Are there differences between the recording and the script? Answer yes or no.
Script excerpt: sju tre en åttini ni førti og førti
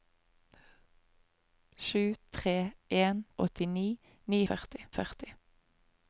no